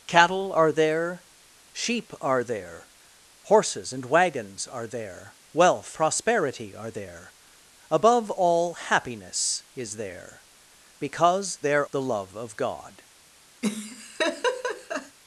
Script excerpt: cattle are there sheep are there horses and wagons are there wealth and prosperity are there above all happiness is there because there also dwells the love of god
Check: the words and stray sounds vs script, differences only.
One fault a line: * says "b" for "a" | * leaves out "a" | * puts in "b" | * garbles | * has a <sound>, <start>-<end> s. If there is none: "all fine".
* leaves out "and"
* leaves out "also dwells"
* has a laugh, 13.6-15.2 s